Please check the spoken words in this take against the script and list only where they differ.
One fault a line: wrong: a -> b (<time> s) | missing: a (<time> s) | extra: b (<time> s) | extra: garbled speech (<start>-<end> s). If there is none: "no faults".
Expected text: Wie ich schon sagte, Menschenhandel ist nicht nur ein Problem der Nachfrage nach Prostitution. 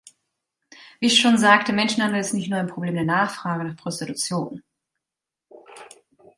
no faults